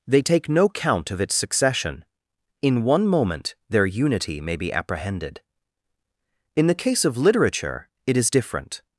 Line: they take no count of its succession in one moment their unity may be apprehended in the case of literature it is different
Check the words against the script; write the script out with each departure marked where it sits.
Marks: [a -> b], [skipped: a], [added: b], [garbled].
they take no count of its succession in one moment their unity may be apprehended in the case of literature it is different